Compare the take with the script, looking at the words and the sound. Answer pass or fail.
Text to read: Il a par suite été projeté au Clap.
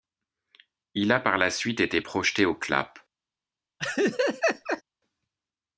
fail